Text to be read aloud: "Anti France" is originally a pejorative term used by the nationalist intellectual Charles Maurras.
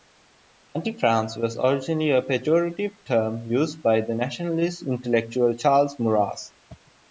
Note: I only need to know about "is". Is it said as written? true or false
false